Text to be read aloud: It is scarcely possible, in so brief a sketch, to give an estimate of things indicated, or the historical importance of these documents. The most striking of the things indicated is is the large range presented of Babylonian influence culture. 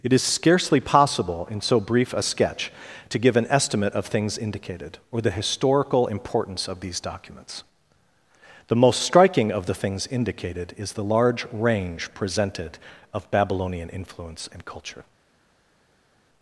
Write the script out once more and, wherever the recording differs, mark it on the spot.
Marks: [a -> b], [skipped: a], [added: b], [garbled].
It is scarcely possible, in so brief a sketch, to give an estimate of things indicated, or the historical importance of these documents. The most striking of the things indicated is [skipped: is] the large range presented of Babylonian influence [added: and] culture.